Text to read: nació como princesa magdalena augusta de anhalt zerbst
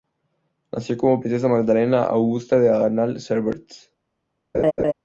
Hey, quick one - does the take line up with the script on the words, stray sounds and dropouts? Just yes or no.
no